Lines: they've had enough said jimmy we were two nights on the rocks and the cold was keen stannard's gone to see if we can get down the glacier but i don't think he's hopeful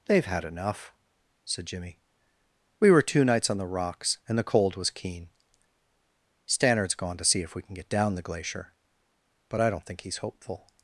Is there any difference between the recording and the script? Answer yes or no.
no